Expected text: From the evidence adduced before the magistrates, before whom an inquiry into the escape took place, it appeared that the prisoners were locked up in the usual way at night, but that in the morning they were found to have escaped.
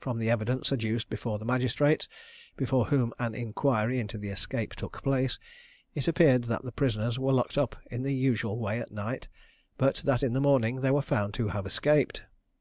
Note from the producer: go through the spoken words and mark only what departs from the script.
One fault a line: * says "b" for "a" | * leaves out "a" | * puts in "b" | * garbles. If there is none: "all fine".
all fine